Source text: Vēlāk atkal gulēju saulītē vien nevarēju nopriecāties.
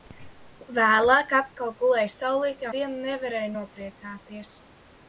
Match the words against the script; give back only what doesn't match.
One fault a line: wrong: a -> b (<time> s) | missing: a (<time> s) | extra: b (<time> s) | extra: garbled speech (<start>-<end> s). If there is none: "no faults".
no faults